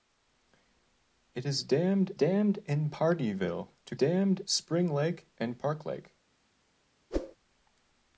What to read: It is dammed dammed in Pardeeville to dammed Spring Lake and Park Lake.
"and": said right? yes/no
yes